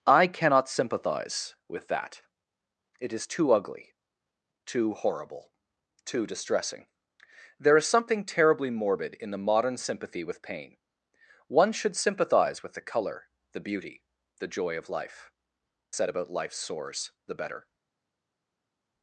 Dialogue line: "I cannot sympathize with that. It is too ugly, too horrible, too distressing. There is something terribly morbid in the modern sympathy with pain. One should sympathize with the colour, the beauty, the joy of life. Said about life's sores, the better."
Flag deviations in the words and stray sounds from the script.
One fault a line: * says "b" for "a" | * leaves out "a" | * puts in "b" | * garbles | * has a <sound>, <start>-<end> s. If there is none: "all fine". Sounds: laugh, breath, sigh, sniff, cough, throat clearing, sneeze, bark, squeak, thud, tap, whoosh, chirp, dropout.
all fine